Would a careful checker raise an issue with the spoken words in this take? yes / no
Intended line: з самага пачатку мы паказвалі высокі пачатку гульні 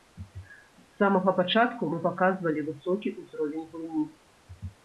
yes